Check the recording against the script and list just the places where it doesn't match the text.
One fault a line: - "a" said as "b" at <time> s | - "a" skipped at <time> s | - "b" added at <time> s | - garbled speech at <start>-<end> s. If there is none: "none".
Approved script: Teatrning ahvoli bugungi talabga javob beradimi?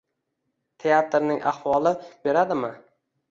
- "bugungi talabga javob" skipped at 1.9 s